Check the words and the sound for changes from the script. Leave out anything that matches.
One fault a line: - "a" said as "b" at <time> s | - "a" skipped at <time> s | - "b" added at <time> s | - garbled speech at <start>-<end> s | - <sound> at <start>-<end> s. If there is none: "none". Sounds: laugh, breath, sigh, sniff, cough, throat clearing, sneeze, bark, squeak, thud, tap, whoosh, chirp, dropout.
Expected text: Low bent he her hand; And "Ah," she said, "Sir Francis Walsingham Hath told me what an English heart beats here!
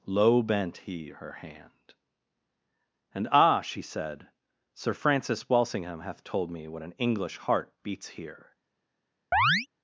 - chirp at 9.3-9.7 s